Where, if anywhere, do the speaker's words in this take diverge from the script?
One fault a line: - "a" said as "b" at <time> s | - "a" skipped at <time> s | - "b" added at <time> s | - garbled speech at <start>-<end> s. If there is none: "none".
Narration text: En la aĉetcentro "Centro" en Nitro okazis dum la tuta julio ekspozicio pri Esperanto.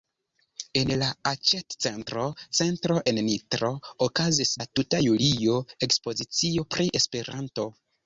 - "dum" skipped at 4.5 s